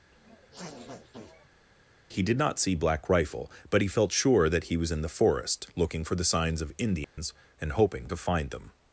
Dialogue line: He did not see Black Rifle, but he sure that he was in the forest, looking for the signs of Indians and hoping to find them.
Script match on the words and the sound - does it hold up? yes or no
no